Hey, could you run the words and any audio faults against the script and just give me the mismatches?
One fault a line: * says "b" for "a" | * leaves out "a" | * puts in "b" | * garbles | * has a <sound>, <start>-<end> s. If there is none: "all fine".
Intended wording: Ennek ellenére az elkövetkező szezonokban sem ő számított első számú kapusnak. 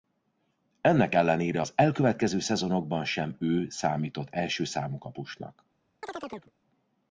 * has a chirp, 6.0-6.5 s